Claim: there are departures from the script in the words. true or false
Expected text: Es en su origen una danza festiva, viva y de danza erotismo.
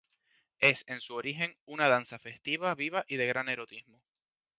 true